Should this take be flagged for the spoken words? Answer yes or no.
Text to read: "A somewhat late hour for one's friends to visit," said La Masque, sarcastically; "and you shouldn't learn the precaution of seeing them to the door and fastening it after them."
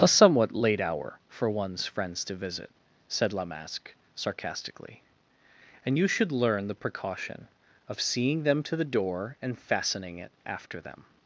yes